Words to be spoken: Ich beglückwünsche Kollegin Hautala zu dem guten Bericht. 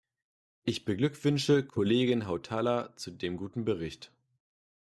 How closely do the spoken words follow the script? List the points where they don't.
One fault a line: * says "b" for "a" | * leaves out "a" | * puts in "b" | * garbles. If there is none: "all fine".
all fine